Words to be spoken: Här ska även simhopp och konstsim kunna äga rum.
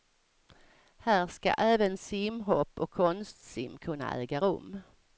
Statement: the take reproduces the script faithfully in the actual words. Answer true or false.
true